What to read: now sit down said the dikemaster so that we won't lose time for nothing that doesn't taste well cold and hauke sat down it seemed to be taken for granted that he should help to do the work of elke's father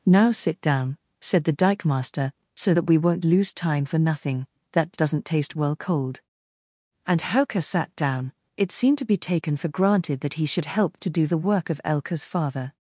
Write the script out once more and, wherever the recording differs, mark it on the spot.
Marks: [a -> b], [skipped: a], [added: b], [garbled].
now sit down said the dikemaster so that we won't lose time for nothing that doesn't taste well cold and hauke sat down it seemed to be taken for granted that he should help to do the work of elke's father